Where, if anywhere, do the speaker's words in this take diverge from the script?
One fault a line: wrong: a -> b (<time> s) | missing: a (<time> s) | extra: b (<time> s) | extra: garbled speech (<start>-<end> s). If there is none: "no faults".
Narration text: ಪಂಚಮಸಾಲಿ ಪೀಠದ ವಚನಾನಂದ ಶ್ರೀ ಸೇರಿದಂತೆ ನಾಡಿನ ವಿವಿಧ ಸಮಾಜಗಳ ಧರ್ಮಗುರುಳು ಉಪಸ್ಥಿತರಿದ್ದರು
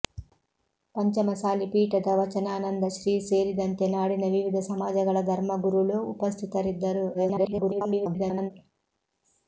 extra: garbled speech (7.1-8.5 s)